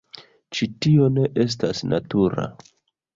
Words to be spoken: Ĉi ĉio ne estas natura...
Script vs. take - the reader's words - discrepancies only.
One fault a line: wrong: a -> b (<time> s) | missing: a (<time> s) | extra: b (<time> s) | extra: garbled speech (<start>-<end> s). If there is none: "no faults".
wrong: ĉio -> tio (0.8 s)